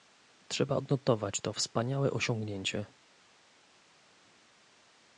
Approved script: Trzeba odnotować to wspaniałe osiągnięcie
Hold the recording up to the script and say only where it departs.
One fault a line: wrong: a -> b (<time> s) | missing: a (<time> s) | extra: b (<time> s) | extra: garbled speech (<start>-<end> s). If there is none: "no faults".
no faults